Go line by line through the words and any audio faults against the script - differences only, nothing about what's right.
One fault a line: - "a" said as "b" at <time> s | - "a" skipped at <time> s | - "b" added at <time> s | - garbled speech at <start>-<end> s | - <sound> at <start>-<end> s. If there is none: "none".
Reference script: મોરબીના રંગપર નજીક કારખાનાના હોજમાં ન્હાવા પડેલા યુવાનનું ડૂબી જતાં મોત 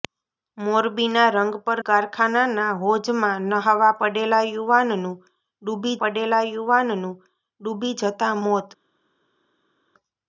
- "નજીક" skipped at 1.8 s
- "પડેલા યુવાનનું ડૂબી" added at 6.0 s